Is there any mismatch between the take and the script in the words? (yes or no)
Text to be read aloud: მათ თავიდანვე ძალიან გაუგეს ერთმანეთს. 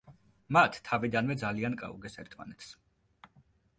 no